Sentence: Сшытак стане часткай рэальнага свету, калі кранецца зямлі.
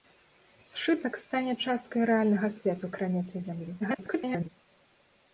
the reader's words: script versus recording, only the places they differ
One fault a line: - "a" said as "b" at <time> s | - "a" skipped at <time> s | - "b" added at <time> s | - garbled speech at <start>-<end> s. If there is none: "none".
- "калі" skipped at 2.9 s
- garbled speech at 3.8-4.5 s